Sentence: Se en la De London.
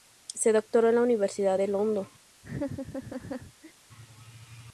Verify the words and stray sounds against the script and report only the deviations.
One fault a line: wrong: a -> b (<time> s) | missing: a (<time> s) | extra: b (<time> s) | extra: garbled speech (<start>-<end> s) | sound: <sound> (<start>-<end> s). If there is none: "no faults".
extra: doctoró (0.5 s)
extra: Universidad (1.0 s)
sound: laugh (2.4-3.7 s)